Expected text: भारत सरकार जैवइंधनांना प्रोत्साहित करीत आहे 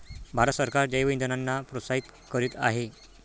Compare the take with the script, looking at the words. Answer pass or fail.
pass